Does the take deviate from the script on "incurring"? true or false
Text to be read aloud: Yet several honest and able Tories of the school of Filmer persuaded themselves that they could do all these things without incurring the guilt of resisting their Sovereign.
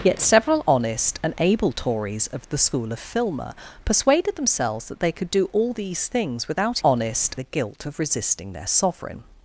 true